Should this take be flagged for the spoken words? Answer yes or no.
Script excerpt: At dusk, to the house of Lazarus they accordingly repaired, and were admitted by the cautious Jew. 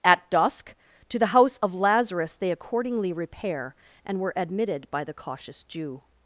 yes